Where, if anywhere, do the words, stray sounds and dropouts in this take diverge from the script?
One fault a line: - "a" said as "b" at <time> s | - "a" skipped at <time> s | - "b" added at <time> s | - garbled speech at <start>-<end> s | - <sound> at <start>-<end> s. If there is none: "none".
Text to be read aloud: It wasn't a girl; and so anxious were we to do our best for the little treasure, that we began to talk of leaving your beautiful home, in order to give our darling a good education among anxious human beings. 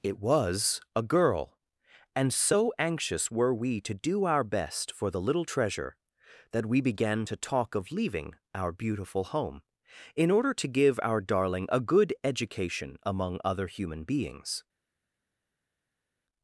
- "wasn't" said as "was" at 0.2 s
- "your" said as "our" at 8.5 s
- "anxious" said as "other" at 13.4 s